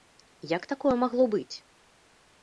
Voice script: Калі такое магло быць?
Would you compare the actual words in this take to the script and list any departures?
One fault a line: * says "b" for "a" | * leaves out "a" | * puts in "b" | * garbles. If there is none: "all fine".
* says "Як" for "Калі"